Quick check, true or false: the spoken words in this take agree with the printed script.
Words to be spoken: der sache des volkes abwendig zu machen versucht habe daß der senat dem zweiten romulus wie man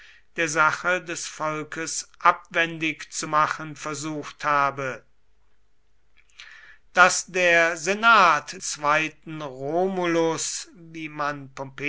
false